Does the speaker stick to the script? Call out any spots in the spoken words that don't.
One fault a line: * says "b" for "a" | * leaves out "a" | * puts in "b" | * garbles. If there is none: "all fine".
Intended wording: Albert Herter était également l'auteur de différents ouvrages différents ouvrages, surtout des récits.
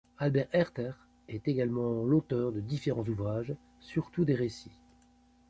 * says "est" for "était"
* leaves out "différents ouvrages"